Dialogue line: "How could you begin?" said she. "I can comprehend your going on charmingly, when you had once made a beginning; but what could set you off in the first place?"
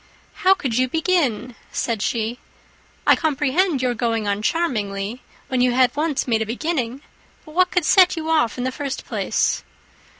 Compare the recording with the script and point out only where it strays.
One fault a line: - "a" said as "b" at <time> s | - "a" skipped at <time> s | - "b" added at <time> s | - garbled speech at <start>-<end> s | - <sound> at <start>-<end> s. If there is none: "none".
- "can" skipped at 3.1 s